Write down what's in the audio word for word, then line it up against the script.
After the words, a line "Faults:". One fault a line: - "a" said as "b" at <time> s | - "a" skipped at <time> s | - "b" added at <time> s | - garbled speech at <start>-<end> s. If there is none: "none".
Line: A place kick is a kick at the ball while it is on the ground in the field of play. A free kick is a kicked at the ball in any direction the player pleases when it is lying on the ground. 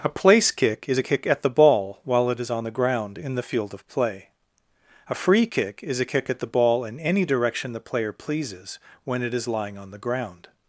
A place kick is a kick at the ball while it is on the ground in the field of play. A free kick is a kick at the ball in any direction the player pleases when it is lying on the ground.
Faults:
- "kicked" said as "kick" at 6.0 s